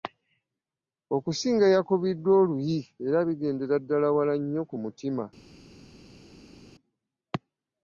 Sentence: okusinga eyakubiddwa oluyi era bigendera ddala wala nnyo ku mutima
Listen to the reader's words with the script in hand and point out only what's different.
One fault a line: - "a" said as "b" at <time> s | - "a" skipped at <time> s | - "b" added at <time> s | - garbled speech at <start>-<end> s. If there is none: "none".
none